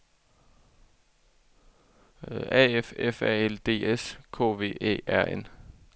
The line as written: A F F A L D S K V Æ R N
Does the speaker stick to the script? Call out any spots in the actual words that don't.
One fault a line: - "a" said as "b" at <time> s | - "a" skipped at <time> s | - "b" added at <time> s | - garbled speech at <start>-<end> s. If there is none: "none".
none